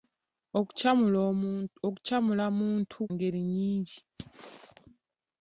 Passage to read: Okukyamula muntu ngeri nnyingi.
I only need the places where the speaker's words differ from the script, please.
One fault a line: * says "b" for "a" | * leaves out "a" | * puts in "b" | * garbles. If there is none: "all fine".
all fine